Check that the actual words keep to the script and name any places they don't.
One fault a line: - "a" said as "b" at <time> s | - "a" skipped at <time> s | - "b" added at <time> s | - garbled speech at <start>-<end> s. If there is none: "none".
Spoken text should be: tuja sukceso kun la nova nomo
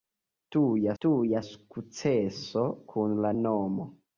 - "tuja" added at 1.0 s
- "nova" skipped at 3.3 s